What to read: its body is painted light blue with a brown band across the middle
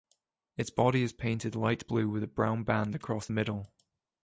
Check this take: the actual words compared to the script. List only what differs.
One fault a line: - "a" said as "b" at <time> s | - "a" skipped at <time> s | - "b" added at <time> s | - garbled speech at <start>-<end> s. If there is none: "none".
none